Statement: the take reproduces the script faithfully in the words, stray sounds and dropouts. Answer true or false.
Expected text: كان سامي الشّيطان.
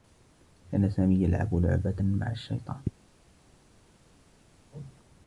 false